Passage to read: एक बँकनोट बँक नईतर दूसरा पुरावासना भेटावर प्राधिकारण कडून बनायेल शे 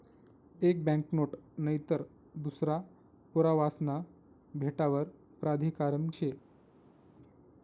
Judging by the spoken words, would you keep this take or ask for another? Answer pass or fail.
fail